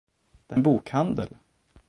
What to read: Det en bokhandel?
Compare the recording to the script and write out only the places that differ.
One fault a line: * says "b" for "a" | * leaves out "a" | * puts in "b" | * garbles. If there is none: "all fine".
all fine